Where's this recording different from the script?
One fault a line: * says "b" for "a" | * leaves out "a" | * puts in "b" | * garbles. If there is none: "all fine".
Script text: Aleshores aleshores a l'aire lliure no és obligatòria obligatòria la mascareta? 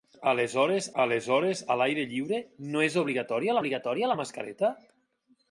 all fine